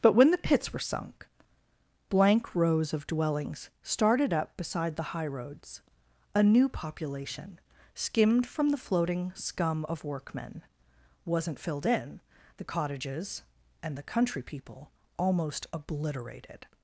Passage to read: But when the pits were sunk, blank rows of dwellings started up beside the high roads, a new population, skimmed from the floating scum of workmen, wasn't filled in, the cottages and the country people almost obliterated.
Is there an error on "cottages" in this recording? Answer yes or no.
no